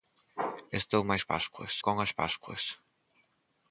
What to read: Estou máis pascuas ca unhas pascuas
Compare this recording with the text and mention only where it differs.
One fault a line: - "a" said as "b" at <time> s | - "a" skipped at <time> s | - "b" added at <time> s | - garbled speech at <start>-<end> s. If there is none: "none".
none